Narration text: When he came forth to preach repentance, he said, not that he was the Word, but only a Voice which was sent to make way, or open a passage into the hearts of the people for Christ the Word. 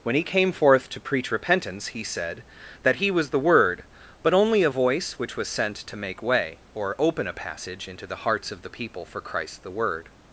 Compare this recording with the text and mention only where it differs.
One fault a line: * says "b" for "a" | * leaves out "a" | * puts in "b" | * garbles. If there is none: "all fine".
* leaves out "not"